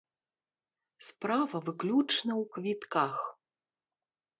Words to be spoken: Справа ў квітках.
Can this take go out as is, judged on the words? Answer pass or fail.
fail